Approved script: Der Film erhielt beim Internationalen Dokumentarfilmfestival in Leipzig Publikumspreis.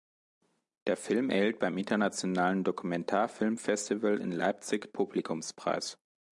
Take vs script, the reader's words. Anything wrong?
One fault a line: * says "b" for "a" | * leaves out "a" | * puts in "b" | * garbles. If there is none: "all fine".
all fine